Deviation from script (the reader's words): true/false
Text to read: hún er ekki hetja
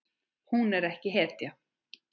false